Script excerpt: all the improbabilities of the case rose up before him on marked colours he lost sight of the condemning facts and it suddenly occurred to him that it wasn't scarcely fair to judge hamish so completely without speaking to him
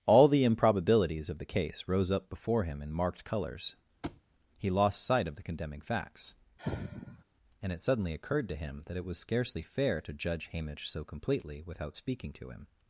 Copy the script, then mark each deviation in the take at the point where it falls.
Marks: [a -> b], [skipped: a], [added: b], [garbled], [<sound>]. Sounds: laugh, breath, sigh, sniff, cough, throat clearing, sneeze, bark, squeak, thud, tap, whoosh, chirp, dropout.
all the improbabilities of the case rose up before him [on -> in] marked colours [thud] he lost sight of the condemning facts [sigh] and it suddenly occurred to him that it [wasn't -> was] scarcely fair to judge hamish so completely without speaking to him